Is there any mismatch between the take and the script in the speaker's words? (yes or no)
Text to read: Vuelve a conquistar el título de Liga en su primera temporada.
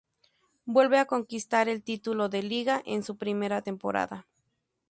no